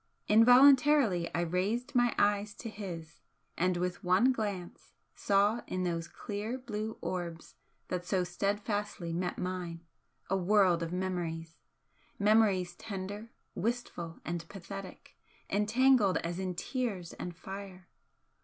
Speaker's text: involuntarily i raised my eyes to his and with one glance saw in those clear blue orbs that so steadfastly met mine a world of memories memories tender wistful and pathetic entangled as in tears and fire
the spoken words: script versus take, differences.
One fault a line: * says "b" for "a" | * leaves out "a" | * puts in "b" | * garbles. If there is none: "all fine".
all fine